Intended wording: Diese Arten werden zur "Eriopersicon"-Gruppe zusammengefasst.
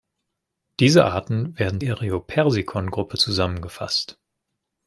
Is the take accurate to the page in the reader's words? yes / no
no